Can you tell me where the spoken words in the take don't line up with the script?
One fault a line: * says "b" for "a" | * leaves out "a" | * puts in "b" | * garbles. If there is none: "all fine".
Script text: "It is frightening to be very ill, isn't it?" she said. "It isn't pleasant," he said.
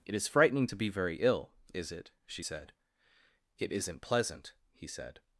* says "is" for "isn't"